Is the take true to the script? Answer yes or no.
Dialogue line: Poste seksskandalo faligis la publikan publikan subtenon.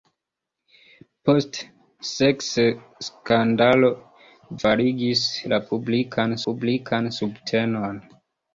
yes